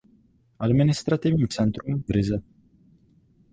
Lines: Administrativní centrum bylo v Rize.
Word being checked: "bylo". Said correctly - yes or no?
no